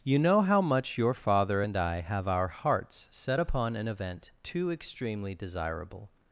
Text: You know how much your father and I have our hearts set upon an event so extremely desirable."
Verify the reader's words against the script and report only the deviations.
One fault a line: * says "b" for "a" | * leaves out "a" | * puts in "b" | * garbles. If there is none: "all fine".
* says "too" for "so"